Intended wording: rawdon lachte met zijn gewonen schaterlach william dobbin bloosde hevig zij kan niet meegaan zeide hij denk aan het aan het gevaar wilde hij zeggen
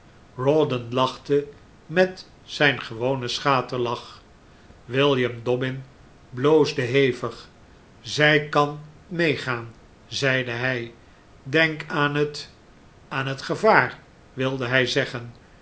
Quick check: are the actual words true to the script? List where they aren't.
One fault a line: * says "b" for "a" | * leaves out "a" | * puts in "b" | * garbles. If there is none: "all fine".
* leaves out "niet"